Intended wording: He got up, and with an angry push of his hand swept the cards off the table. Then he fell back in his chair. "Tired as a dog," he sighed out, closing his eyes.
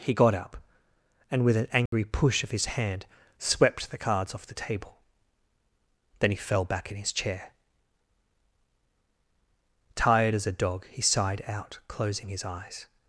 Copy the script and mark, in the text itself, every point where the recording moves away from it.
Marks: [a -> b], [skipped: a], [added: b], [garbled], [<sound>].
He got up, and with an angry [dropout] push of his hand swept the cards off the table. Then he fell back in his chair. "Tired as a dog," he sighed out, closing his eyes.